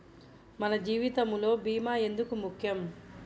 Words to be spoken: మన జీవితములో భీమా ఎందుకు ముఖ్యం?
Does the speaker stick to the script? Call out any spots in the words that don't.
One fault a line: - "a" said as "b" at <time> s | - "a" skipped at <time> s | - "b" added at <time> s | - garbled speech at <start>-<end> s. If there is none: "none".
none